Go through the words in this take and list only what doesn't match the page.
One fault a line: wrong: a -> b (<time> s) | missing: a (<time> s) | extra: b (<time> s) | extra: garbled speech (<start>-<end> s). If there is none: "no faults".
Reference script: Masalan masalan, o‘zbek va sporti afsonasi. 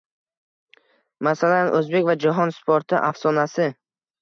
missing: masalan (1.7 s)
extra: jahon (2.2 s)